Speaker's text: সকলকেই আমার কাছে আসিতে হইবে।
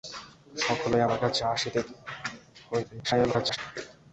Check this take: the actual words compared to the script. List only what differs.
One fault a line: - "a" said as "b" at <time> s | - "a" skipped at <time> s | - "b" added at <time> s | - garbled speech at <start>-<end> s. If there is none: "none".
- garbled speech at 3.0-3.6 s